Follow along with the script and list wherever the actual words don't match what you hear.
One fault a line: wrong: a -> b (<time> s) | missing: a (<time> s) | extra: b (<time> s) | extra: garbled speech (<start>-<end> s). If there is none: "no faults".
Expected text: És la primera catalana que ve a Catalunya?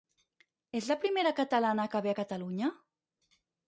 no faults